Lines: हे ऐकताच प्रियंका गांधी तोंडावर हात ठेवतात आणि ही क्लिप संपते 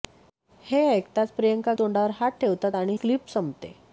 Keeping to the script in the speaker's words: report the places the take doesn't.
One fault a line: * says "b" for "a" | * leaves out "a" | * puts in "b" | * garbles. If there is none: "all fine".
* leaves out "गांधी"
* leaves out "ही"